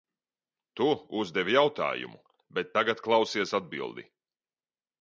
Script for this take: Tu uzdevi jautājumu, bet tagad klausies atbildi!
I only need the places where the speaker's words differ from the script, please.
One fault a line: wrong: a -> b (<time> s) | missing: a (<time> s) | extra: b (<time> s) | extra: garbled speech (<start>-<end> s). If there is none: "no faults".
no faults